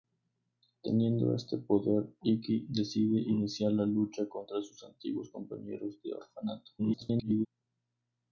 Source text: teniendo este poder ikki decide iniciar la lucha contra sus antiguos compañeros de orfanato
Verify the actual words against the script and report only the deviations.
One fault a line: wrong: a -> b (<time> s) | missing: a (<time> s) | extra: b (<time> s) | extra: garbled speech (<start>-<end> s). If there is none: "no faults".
extra: garbled speech (6.8-7.5 s)